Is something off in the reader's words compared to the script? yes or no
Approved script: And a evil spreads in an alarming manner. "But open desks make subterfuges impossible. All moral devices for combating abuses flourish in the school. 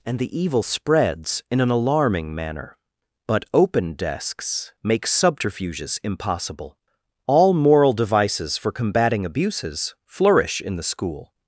yes